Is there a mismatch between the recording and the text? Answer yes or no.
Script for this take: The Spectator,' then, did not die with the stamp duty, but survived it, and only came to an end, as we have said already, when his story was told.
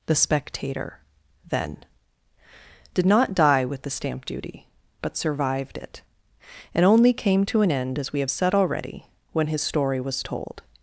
no